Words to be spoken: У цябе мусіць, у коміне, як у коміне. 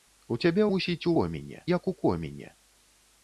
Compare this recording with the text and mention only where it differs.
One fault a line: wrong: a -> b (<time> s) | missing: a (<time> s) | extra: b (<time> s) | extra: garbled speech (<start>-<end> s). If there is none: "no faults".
no faults